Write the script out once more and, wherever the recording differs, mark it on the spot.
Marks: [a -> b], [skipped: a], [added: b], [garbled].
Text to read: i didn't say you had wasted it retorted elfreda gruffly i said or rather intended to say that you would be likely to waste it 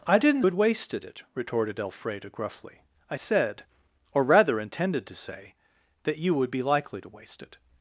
i didn't [skipped: say you] had wasted it retorted elfreda gruffly i said or rather intended to say that you would be likely to waste it